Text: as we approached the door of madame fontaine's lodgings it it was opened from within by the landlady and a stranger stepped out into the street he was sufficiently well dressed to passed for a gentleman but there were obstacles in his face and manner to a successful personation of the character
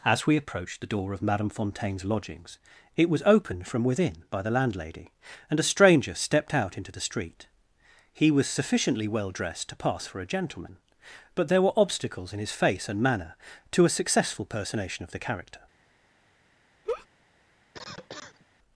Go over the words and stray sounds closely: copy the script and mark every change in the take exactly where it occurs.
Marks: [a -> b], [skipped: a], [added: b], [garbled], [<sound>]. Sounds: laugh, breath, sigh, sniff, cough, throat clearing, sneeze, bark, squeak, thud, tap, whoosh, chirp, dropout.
as we approached the door of madame fontaine's lodgings it [skipped: it] was opened from within by the landlady and a stranger stepped out into the street he was sufficiently well dressed to [passed -> pass] for a gentleman but there were obstacles in his face and manner to a successful personation of the character [laugh] [cough]